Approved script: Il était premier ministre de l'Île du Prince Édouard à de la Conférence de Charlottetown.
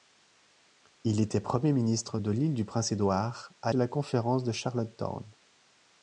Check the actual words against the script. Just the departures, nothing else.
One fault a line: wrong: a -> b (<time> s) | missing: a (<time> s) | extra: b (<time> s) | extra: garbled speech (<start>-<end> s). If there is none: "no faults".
no faults